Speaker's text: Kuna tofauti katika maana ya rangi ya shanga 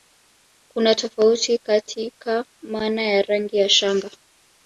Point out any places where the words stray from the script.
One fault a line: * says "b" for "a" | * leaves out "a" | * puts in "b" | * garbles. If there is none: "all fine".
all fine